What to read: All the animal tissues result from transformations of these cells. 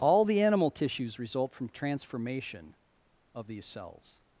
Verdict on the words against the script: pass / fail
fail